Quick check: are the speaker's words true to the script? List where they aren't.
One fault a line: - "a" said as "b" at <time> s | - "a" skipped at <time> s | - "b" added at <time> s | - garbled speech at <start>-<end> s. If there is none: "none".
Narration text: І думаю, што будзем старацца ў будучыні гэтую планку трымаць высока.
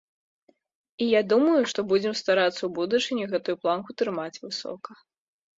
- "я" added at 1.1 s